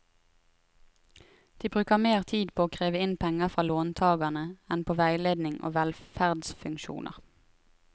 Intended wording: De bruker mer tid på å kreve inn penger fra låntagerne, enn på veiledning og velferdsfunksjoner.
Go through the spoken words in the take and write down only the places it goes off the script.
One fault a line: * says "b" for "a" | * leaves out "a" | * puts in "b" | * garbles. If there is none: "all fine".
all fine